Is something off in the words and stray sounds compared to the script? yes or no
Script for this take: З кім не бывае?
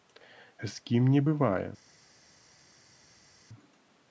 no